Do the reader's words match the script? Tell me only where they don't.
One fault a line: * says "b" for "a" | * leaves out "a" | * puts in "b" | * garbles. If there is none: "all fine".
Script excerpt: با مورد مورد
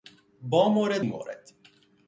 all fine